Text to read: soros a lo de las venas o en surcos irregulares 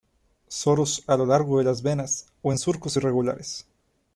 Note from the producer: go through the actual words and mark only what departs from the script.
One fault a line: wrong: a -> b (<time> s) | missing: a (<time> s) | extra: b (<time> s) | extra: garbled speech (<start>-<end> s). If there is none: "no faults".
extra: largo (1.3 s)